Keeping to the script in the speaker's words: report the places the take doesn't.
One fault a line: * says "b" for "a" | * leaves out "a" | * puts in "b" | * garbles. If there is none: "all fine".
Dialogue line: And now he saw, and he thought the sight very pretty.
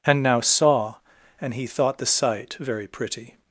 * leaves out "he"